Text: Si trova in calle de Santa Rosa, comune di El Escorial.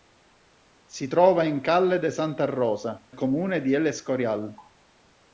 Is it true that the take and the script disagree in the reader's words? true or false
false